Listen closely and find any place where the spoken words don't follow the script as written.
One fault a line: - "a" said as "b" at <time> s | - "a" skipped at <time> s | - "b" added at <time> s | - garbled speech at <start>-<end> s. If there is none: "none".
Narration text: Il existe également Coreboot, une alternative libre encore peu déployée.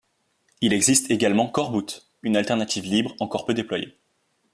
none